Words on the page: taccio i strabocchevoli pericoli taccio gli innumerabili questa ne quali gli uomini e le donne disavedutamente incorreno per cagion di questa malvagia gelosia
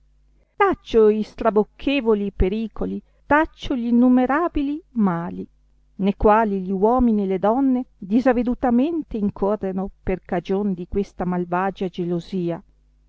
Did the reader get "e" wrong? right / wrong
right